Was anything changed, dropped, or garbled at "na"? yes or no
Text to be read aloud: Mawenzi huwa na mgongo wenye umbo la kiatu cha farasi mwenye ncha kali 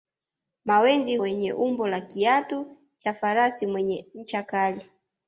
yes